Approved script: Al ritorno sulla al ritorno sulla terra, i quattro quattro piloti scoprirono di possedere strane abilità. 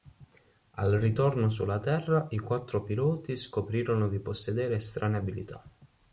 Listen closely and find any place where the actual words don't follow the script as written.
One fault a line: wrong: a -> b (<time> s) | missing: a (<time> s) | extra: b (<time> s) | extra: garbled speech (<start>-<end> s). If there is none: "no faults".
missing: al ritorno sulla (1.8 s)
missing: quattro (2.8 s)